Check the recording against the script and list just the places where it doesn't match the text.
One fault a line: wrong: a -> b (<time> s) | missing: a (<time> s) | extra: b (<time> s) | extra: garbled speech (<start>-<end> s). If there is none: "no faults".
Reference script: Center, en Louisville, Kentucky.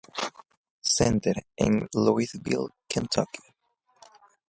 no faults